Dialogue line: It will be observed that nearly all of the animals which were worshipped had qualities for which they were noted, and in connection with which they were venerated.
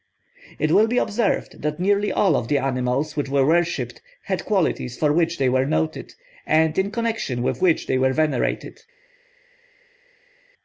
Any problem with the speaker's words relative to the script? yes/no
no